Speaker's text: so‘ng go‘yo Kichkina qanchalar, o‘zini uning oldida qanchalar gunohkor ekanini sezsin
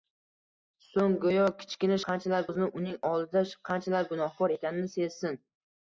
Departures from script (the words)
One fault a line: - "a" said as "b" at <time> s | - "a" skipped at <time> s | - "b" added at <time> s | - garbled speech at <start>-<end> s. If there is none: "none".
none